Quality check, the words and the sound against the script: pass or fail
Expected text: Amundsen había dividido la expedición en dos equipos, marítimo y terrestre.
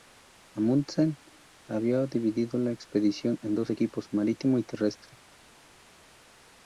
pass